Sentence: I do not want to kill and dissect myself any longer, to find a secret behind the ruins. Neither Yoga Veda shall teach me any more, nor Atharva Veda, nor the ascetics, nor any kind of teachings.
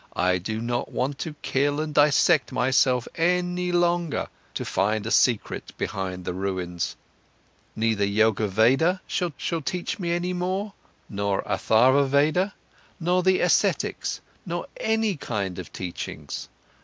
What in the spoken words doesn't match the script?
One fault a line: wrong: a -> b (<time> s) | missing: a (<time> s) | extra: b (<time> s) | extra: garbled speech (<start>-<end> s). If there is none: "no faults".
extra: shall (9.4 s)